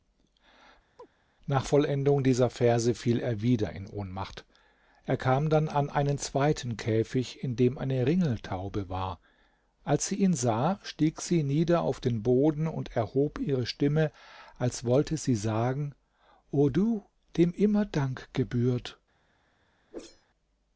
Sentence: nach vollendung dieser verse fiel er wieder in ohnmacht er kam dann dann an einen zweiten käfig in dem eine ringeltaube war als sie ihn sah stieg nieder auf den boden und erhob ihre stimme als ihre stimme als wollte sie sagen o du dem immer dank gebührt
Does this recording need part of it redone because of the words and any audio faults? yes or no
yes